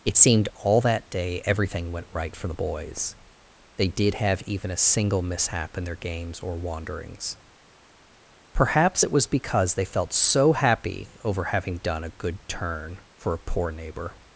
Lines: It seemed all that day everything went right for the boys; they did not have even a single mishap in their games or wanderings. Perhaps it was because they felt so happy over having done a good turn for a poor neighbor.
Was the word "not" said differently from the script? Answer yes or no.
yes